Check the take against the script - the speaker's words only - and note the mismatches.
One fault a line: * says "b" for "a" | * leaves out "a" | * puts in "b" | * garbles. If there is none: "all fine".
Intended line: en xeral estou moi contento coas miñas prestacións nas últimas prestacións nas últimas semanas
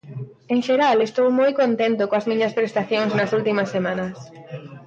* leaves out "prestacións nas últimas"